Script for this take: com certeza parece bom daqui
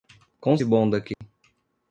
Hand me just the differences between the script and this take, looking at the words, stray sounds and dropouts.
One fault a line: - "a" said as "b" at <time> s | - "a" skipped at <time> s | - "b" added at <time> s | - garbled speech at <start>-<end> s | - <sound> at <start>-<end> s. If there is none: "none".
- "certeza parece" skipped at 0.6 s
- dropout at 1.1-1.2 s